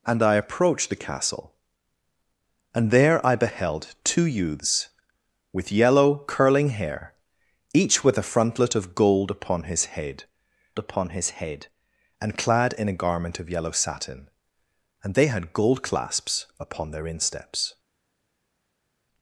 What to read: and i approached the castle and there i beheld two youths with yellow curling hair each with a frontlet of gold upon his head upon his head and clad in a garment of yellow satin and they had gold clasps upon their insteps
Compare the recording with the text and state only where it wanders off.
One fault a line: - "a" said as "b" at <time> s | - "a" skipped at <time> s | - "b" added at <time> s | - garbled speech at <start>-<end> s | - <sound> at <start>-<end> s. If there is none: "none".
none